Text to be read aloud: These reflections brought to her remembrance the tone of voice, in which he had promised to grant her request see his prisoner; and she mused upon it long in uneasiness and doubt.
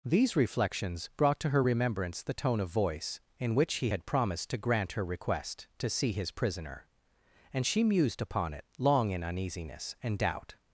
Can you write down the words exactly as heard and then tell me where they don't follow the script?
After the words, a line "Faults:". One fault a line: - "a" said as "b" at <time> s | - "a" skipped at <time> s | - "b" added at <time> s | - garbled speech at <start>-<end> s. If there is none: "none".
These reflections brought to her remembrance the tone of voice, in which he had promised to grant her request to see his prisoner; and she mused upon it long in uneasiness and doubt.
Faults:
- "to" added at 5.8 s